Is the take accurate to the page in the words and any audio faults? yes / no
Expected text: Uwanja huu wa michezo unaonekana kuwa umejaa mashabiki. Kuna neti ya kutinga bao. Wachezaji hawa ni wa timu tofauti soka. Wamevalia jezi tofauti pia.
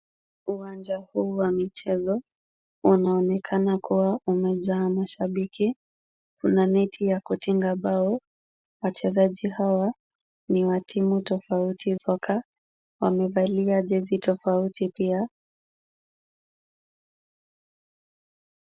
yes